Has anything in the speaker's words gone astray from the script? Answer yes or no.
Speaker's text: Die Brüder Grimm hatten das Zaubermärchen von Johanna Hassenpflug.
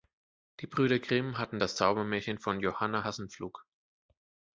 no